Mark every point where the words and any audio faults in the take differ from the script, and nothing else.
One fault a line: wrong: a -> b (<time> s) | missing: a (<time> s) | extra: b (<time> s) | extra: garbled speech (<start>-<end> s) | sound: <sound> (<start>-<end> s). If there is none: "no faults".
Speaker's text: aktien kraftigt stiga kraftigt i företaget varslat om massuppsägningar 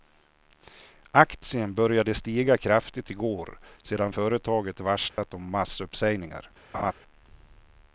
wrong: kraftigt -> började (1.7 s)
extra: går sedan (3.1 s)
sound: dropout (5.1-5.2 s)
sound: laugh (6.7-6.9 s)